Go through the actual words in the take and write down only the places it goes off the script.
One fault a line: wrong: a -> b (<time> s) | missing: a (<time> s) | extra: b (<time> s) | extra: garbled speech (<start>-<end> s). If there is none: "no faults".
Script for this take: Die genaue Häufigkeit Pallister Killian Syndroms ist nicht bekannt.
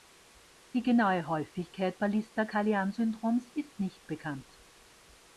no faults